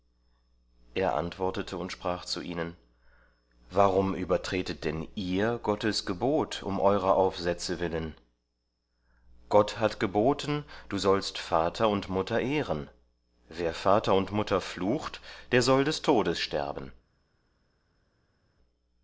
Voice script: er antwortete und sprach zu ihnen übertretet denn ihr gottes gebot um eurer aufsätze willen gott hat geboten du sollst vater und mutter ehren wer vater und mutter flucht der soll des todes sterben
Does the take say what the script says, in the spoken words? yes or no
no